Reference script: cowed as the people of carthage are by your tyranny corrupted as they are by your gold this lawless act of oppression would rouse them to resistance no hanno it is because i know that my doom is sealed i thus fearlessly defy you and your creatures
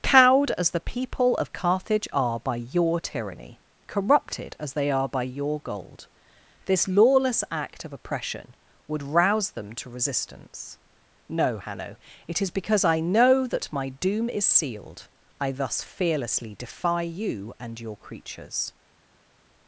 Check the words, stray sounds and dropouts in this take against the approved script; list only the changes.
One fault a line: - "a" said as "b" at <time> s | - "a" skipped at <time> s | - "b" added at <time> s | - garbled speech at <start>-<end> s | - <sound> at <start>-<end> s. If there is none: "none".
none